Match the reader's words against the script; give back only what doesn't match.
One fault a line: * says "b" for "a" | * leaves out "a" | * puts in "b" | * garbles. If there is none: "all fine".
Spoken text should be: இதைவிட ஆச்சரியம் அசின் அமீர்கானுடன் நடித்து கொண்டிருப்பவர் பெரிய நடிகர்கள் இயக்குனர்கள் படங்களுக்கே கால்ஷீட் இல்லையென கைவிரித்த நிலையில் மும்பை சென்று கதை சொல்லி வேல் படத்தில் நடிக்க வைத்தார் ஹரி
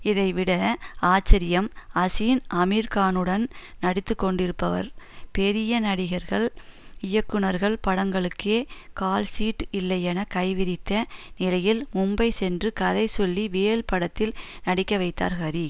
all fine